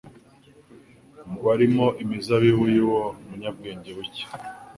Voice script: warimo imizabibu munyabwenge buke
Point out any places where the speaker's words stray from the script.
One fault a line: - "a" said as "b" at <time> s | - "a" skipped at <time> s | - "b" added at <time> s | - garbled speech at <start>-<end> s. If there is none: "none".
- "y'uwo" added at 2.8 s